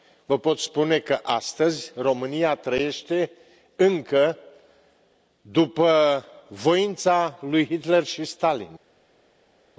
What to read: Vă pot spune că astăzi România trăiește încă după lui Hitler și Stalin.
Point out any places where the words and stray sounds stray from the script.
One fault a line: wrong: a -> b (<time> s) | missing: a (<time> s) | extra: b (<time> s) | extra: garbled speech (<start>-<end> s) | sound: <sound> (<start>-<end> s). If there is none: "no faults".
extra: voința (6.5 s)